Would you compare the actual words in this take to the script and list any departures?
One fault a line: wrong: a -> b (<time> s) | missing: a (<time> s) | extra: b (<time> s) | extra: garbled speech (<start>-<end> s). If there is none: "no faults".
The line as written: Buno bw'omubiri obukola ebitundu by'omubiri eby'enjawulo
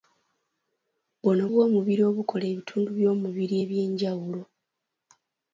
no faults